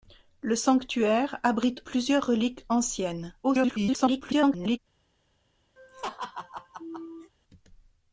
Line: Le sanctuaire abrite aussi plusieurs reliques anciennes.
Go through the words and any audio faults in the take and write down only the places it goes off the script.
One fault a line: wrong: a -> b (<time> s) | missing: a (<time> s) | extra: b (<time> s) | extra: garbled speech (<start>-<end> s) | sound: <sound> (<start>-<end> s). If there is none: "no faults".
missing: aussi (1.8 s)
extra: garbled speech (3.4-4.8 s)
sound: laugh (5.8-7.3 s)